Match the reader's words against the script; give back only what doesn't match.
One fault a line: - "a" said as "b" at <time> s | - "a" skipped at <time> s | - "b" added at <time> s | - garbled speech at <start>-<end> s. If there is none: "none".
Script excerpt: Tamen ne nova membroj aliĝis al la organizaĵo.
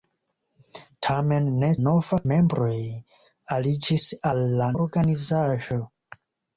none